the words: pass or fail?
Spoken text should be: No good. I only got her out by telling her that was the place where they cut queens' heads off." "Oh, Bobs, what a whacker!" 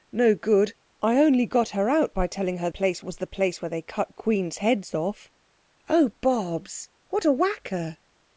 fail